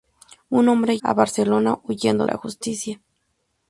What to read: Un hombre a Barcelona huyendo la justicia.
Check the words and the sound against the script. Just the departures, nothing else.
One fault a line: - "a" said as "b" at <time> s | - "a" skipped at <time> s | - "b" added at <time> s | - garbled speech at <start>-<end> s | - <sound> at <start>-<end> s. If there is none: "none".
none